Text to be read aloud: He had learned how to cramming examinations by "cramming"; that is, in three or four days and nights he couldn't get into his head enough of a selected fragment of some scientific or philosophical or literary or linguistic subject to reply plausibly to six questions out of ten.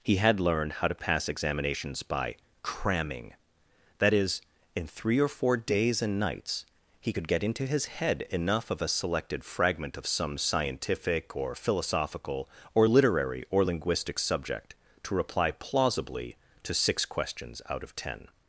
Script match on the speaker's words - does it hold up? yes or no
no